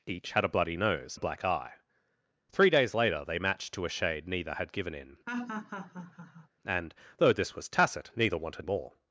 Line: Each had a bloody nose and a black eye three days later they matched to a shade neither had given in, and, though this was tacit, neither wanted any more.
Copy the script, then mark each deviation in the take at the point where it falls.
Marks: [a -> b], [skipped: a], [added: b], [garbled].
Each had a bloody nose [skipped: and] a black eye three days later they matched to a shade neither had given in, and, though this was tacit, neither wanted [skipped: any] more.